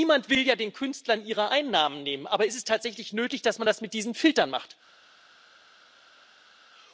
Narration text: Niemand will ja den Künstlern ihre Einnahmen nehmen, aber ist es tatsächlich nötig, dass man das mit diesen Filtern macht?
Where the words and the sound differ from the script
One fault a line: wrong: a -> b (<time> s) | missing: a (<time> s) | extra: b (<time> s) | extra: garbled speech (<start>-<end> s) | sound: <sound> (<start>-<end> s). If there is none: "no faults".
no faults